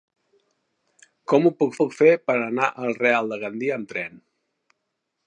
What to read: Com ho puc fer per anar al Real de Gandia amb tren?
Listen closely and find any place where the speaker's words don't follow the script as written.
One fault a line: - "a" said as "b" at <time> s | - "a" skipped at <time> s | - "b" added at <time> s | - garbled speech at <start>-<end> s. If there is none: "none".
- "puc" added at 1.8 s